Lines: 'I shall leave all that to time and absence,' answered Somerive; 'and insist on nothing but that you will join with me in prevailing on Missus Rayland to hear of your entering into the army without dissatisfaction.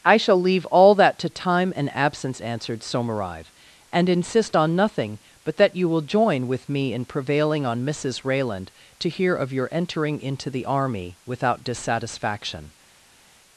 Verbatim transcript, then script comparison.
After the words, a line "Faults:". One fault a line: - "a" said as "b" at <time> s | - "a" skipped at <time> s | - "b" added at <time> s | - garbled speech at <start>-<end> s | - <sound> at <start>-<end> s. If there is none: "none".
'I shall leave all that to time and absence,' answered Somerive; 'and insist on nothing but that you will join with me in prevailing on Missus Rayland to hear of your entering into the army without dissatisfaction.
Faults:
none